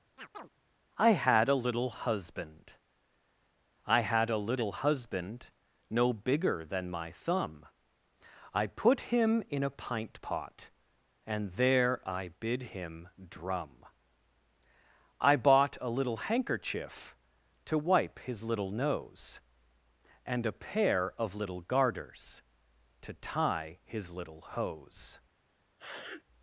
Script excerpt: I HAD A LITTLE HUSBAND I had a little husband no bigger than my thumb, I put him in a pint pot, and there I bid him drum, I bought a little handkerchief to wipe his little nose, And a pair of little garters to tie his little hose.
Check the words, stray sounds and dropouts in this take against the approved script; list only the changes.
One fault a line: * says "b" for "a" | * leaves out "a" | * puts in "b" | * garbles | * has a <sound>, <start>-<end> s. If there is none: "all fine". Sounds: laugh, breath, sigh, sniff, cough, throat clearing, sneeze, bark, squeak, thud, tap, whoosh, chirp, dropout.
* has a chirp, 0.2-0.5 s
* has a sniff, 25.8-26.2 s